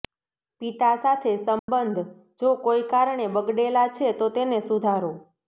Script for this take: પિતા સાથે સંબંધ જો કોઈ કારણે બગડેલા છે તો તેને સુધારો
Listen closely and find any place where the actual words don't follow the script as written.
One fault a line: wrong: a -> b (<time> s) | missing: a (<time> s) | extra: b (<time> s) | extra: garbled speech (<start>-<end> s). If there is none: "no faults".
no faults